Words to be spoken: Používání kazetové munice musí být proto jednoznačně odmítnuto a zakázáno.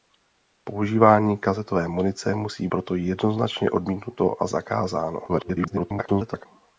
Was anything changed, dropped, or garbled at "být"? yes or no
yes